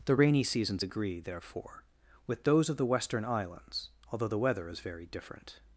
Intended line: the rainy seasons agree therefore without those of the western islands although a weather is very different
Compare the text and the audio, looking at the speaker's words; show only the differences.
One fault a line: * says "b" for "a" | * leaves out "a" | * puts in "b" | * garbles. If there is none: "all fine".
* says "with" for "without"
* says "the" for "a"